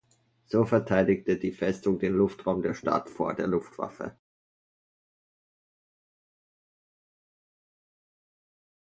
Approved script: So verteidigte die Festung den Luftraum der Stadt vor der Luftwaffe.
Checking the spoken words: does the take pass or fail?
pass